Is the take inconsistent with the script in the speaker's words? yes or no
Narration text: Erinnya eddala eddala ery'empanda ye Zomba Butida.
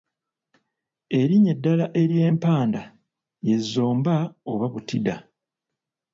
yes